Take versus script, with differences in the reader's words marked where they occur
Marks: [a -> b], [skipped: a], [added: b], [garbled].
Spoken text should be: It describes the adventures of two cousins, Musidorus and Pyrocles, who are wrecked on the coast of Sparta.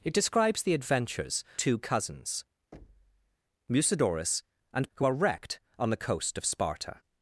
It describes the adventures [skipped: of] two cousins, Musidorus and [skipped: Pyrocles,] who are wrecked on the coast of Sparta.